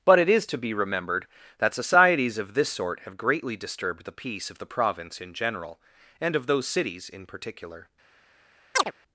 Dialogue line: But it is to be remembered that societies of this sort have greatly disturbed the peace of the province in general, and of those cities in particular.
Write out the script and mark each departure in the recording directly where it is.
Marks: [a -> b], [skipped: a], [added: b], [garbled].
But it is to be remembered that societies of this sort have greatly disturbed the peace of the province in general, and of those cities in particular.